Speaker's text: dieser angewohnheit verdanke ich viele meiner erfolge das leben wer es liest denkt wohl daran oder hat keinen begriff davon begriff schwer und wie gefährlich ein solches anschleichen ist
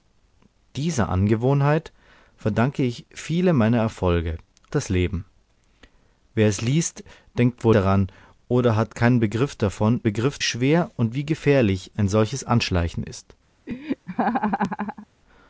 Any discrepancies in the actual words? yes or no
no